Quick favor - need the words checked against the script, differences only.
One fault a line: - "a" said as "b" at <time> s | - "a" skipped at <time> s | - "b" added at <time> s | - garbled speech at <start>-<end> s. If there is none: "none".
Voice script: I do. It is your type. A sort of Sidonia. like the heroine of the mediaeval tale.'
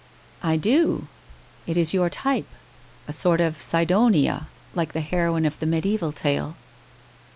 none